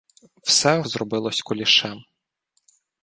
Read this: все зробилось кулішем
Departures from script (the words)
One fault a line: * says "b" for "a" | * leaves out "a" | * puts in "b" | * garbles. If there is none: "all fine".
all fine